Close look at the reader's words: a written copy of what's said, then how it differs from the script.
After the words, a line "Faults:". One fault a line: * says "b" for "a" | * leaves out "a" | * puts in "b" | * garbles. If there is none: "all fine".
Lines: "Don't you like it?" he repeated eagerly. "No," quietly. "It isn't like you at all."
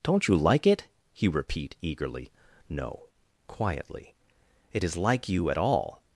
"Don't you like it?" he repeat eagerly. "No," quietly. "It is like you at all."
Faults:
* says "repeat" for "repeated"
* says "is" for "isn't"